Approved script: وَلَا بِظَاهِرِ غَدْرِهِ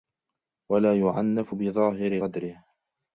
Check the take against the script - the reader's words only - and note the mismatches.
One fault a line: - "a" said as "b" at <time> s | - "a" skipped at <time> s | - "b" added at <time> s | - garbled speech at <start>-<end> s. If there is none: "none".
- "يُعَنَّفُ" added at 1.0 s